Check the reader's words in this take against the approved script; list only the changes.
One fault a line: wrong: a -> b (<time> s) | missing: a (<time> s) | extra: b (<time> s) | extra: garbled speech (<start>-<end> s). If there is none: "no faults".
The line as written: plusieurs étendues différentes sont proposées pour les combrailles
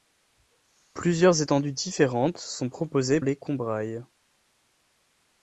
missing: pour (3.2 s)